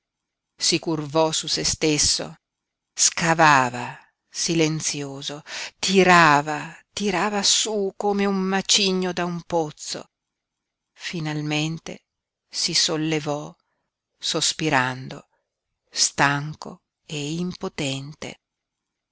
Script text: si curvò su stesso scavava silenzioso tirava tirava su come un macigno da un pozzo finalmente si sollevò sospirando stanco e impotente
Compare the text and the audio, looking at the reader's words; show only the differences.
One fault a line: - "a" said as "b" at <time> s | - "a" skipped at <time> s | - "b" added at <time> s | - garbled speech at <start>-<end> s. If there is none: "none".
- "se" added at 1.5 s